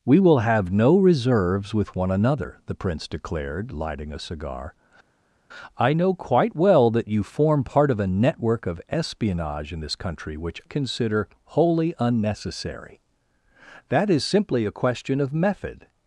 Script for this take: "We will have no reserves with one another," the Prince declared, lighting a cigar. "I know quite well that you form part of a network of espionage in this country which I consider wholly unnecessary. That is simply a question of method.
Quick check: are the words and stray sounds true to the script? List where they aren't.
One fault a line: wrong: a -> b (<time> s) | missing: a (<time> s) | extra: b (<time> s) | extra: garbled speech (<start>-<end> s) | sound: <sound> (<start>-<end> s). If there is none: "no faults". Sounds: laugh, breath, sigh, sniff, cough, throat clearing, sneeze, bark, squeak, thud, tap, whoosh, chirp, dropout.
missing: I (10.6 s)